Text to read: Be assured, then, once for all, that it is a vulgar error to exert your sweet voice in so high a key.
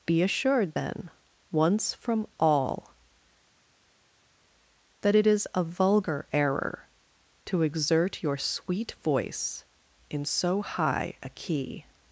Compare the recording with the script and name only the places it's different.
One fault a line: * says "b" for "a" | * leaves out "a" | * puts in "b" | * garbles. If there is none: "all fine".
* says "from" for "for"